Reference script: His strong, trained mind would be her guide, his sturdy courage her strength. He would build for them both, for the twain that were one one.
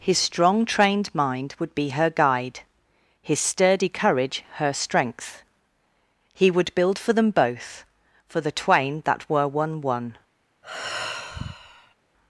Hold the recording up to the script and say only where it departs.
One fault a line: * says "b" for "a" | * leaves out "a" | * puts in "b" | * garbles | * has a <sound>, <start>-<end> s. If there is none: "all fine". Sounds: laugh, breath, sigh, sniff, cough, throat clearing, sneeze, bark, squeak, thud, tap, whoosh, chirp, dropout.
* has a sigh, 10.6-11.9 s